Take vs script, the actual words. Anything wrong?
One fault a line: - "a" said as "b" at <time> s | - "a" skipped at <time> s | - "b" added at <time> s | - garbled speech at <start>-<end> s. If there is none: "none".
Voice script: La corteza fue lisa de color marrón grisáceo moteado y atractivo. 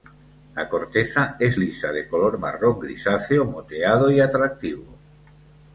- "fue" said as "es" at 1.4 s